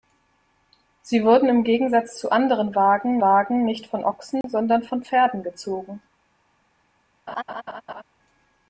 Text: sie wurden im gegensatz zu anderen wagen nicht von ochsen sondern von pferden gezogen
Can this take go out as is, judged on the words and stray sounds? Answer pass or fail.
fail